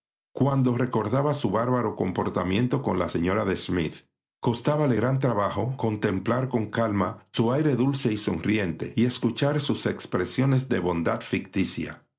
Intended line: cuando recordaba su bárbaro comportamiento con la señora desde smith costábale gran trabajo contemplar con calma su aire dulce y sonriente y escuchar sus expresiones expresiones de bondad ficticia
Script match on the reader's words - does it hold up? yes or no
no